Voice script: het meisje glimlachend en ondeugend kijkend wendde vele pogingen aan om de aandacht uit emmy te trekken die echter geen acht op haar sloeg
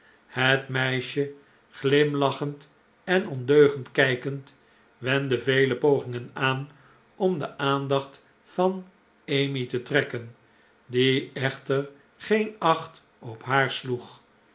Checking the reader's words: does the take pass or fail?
fail